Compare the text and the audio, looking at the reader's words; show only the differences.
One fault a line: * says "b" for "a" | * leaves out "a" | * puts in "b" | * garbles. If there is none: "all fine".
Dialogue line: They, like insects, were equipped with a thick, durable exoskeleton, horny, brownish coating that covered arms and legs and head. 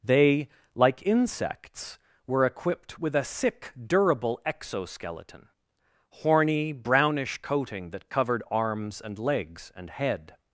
* says "sick" for "thick"